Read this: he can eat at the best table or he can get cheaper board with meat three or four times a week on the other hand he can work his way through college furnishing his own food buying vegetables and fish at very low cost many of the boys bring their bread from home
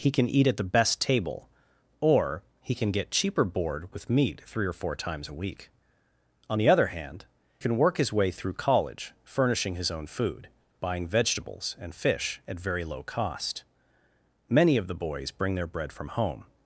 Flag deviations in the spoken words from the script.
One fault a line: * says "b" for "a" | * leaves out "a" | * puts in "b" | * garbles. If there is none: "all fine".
* leaves out "he"